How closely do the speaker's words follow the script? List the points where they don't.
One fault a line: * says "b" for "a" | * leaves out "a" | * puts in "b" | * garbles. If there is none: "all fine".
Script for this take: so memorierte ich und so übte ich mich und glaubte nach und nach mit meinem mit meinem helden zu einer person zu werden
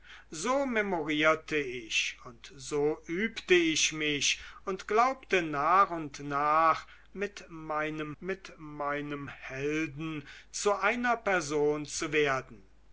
all fine